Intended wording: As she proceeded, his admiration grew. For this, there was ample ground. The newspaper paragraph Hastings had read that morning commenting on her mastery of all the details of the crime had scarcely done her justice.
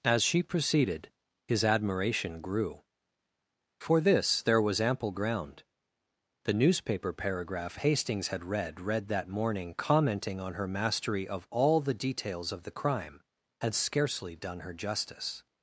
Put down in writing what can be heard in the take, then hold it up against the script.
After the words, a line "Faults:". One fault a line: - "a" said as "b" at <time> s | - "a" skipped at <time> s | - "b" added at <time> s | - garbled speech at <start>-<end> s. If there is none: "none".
As she proceeded, his admiration grew. For this, there was ample ground. The newspaper paragraph Hastings had read read that morning commenting on her mastery of all the details of the crime had scarcely done her justice.
Faults:
- "read" added at 8.8 s